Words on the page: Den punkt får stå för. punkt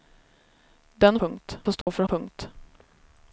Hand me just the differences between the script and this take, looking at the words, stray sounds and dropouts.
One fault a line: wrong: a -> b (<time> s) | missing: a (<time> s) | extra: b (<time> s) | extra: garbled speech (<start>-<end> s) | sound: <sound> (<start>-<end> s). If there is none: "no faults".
sound: dropout (1.8-1.9 s)